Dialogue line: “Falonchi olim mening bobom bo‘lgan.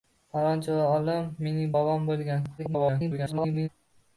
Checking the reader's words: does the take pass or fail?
fail